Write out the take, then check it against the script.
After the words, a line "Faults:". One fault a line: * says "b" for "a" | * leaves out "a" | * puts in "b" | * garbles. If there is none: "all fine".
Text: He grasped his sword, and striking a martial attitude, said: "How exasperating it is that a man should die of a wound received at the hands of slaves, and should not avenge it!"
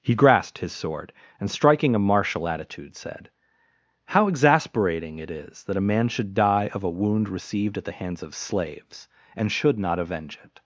He grasped his sword, and striking a martial attitude, said: "How exasperating it is that a man should die of a wound received at the hands of slaves, and should not avenge it!"
Faults:
all fine